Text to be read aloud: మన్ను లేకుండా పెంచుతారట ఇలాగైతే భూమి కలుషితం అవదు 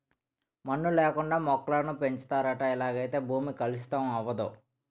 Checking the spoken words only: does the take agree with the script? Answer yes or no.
no